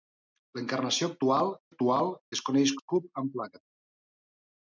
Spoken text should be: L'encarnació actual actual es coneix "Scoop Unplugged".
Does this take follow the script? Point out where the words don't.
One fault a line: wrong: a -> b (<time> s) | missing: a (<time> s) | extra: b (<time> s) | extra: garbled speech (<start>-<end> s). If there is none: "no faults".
no faults